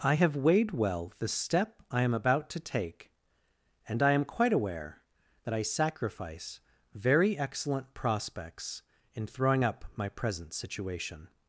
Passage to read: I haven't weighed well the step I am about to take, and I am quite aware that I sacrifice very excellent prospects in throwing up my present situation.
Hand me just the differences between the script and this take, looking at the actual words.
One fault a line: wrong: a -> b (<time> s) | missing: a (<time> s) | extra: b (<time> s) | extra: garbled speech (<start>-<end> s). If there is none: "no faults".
wrong: haven't -> have (0.1 s)